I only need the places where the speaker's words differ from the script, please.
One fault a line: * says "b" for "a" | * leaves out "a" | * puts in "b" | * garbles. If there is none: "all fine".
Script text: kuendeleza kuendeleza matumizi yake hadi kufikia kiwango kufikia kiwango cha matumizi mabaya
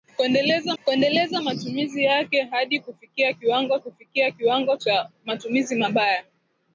all fine